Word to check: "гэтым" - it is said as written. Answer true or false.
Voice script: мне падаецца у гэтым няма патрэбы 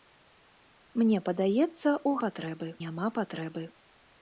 false